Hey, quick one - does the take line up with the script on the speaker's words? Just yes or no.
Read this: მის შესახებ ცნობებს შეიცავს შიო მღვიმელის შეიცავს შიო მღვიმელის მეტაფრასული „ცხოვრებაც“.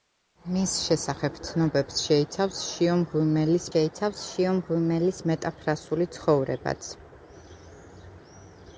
yes